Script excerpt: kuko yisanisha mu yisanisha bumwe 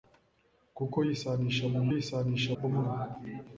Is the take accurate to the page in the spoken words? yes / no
yes